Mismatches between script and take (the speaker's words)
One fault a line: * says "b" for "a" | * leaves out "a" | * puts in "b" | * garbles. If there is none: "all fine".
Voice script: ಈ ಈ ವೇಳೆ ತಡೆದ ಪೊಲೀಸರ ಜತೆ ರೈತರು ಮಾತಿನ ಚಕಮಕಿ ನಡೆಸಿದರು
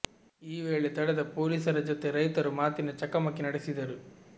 * leaves out "ಈ"